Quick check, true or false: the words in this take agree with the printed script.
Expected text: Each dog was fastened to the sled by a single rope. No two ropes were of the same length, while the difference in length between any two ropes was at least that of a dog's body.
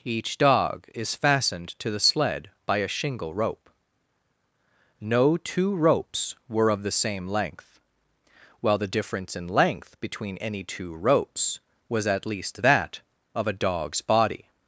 false